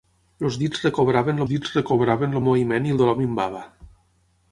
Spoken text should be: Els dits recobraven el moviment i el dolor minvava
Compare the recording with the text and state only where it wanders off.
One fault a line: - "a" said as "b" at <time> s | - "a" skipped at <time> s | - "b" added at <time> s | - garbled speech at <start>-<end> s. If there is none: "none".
- "dits recobraven" added at 1.5 s